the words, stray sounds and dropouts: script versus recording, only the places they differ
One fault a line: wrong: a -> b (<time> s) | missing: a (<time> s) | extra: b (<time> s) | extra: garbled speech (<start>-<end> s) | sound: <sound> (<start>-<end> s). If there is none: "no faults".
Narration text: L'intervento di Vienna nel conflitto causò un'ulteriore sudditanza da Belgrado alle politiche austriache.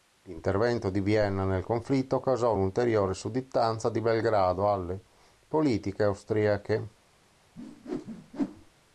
wrong: da -> di (3.9 s)
sound: whoosh (7.6-8.7 s)